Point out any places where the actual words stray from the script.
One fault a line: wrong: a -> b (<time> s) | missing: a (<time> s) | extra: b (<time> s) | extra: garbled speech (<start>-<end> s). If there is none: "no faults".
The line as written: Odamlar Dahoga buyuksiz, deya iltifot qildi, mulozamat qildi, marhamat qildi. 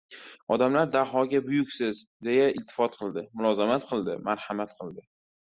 no faults